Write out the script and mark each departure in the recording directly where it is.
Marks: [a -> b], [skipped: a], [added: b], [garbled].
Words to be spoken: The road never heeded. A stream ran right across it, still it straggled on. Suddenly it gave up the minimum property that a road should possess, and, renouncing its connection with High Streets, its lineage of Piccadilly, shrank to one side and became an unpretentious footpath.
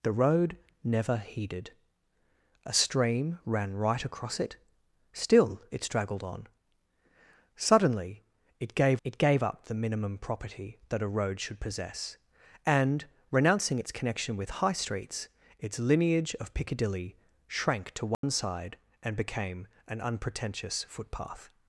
The road never heeded. A stream ran right across it, still it straggled on. Suddenly it gave [added: it gave] up the minimum property that a road should possess, and, renouncing its connection with High Streets, its lineage of Piccadilly, shrank to one side and became an unpretentious footpath.